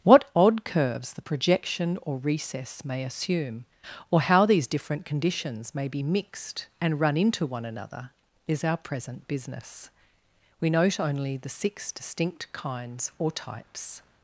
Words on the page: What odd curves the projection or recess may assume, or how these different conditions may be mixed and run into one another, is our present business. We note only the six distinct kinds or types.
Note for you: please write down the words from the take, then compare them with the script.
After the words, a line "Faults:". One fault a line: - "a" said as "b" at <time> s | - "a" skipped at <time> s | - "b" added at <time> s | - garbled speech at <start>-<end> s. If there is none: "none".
What odd curves the projection or recess may assume, or how these different conditions may be mixed and run into one another, is our present business. We note only the six distinct kinds or types.
Faults:
none